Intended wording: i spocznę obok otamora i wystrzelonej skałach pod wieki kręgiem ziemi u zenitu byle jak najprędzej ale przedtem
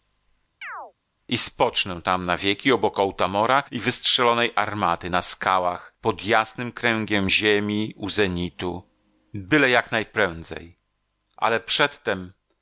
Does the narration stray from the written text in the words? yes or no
yes